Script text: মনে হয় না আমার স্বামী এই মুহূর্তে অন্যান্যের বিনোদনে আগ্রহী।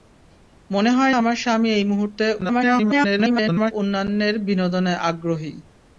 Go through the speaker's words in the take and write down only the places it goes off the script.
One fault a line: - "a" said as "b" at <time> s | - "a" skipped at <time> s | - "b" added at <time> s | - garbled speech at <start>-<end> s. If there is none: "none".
- "না" skipped at 1.1 s
- garbled speech at 2.4-3.7 s